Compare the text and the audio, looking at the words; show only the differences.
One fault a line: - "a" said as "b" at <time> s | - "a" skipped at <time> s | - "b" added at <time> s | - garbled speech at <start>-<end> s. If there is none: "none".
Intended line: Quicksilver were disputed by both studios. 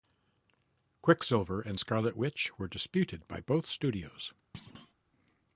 - "and Scarlet Witch" added at 1.6 s